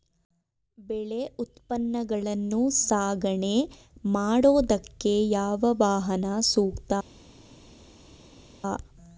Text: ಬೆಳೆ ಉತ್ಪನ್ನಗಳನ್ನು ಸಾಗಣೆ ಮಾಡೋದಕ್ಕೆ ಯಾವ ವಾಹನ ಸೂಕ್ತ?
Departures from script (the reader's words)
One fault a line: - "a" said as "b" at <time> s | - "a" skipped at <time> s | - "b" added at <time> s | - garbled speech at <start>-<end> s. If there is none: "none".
none